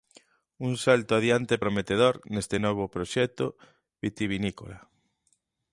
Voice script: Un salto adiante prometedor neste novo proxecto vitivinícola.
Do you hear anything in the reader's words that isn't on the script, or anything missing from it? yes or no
no